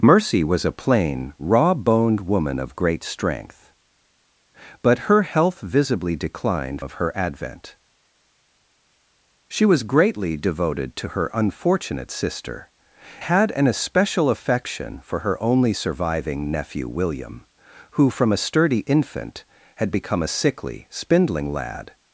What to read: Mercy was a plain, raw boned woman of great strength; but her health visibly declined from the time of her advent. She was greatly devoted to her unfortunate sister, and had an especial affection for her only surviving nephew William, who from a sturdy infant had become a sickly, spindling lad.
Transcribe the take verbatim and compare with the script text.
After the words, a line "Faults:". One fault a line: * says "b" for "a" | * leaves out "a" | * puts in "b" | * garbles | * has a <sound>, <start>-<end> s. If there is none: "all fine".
Mercy was a plain, raw boned woman of great strength; but her health visibly declined of her advent. She was greatly devoted to her unfortunate sister, had an especial affection for her only surviving nephew William, who from a sturdy infant had become a sickly, spindling lad.
Faults:
* leaves out "from the time"
* leaves out "and"